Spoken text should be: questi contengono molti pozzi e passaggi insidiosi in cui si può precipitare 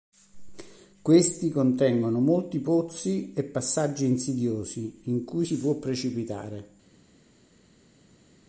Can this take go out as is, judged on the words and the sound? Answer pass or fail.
pass